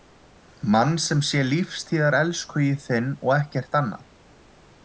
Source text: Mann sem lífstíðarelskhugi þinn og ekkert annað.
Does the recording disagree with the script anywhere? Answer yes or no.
yes